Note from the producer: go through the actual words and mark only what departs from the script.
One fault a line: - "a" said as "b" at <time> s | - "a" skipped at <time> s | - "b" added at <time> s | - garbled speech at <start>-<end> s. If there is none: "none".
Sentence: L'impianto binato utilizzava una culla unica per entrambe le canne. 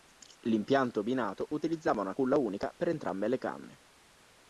none